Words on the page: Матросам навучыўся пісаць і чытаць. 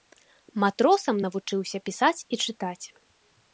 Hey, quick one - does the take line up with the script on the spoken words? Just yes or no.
yes